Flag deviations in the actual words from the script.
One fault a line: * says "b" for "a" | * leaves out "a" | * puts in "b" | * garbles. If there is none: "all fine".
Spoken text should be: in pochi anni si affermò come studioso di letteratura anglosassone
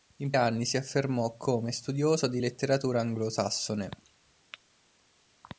* leaves out "pochi"